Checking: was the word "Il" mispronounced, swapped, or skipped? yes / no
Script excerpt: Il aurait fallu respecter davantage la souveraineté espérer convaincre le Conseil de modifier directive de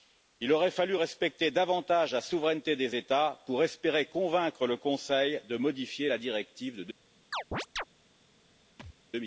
no